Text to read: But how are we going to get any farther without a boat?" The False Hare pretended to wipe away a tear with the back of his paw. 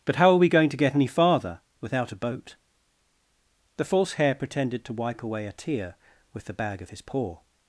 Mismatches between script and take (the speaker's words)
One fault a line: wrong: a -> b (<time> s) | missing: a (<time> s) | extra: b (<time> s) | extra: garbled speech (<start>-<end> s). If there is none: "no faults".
wrong: back -> bag (6.5 s)